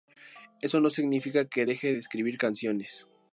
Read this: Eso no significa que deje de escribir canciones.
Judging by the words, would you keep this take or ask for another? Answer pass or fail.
pass